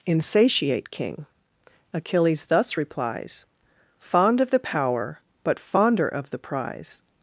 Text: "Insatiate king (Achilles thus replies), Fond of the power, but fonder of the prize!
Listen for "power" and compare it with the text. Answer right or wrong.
right